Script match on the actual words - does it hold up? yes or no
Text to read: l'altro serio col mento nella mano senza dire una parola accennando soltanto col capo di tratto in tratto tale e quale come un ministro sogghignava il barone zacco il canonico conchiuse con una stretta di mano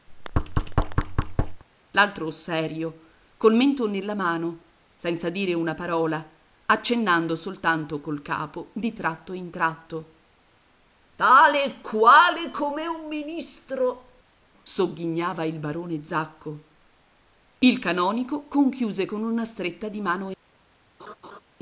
yes